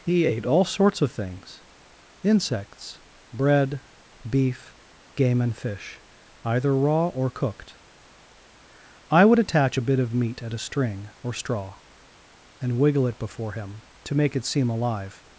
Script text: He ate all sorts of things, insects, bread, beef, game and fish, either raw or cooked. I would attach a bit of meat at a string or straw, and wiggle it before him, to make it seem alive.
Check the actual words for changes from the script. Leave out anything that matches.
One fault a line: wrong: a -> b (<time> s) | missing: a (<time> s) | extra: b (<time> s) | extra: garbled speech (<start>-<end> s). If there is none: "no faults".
no faults